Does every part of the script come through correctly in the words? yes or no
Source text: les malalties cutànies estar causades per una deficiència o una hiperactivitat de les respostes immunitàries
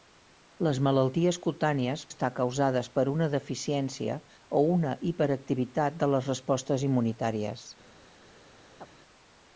yes